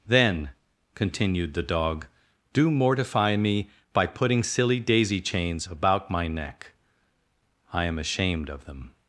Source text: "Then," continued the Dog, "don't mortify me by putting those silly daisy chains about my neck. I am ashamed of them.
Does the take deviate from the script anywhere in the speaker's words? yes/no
yes